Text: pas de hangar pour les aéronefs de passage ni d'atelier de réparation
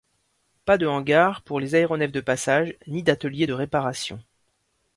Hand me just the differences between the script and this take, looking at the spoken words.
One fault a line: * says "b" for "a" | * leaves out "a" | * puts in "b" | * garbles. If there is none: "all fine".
all fine